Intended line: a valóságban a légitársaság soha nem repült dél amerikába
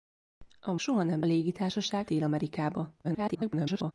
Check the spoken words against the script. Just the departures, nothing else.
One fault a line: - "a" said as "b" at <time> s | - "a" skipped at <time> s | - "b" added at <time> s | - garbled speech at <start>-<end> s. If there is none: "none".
- "valóságban a légitársaság" skipped at 0.8 s
- "repült" said as "légitársaság" at 1.2 s
- garbled speech at 3.0-3.9 s